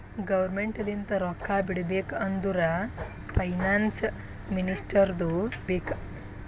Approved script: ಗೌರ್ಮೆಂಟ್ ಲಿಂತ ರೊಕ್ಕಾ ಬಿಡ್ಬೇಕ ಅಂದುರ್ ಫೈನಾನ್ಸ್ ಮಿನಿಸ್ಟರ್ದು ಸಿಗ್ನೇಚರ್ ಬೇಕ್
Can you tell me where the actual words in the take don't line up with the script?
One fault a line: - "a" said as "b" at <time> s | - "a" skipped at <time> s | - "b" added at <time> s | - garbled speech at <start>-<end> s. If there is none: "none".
- "ಸಿಗ್ನೇಚರ್" skipped at 5.3 s